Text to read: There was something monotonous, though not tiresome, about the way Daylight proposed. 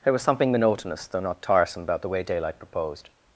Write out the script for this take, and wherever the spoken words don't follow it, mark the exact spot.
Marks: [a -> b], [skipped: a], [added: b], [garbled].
There was something monotonous, though not tiresome, about the way Daylight proposed.